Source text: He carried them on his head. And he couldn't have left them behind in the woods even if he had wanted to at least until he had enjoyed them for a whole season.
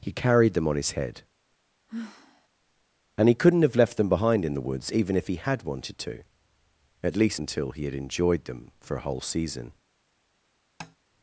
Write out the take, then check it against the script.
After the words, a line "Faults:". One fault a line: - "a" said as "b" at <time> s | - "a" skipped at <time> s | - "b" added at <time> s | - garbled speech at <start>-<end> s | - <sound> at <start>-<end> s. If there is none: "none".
He carried them on his head. And he couldn't have left them behind in the woods even if he had wanted to at least until he had enjoyed them for a whole season.
Faults:
- sigh at 1.9-2.5 s
- tap at 10.8-11.0 s